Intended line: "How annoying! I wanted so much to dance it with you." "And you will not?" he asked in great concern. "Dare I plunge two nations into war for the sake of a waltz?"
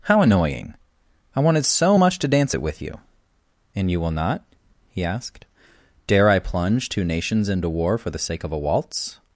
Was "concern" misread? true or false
true